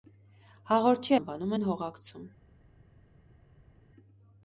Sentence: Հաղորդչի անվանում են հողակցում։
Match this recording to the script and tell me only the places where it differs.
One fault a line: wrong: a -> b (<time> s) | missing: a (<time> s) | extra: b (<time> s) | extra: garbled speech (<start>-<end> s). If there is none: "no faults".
no faults